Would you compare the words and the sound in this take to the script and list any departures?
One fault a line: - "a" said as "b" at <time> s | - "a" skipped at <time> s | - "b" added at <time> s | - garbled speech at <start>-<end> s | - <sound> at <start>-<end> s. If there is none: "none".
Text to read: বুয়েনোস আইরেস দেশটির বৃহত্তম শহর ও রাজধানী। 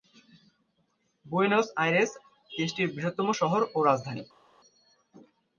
none